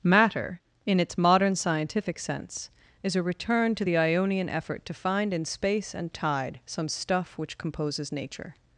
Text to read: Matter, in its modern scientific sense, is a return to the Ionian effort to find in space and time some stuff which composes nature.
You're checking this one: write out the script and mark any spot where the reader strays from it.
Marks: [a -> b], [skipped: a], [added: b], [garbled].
Matter, in its modern scientific sense, is a return to the Ionian effort to find in space and [time -> tide] some stuff which composes nature.